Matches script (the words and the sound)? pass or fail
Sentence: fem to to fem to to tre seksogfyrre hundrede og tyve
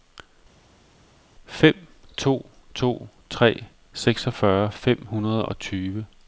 fail